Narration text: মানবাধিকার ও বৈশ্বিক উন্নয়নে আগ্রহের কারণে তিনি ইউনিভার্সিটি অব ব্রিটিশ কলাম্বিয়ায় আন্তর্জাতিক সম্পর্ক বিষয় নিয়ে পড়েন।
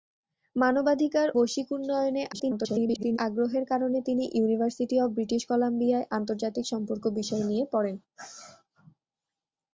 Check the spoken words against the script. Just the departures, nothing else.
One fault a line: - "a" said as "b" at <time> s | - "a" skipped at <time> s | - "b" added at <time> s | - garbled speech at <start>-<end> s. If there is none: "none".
- "ও" skipped at 1.3 s
- garbled speech at 2.3-3.2 s